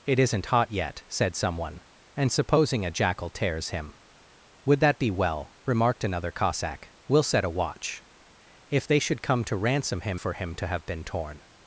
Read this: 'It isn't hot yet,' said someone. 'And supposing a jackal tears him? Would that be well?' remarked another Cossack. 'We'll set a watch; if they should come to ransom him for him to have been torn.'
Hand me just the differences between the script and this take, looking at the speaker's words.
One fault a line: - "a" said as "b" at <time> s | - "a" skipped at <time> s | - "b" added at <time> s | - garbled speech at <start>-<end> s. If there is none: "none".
none